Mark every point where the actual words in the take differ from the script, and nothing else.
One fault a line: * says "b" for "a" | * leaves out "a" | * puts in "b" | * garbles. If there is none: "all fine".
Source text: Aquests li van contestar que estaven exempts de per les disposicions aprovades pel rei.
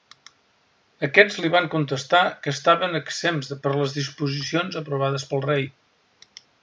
all fine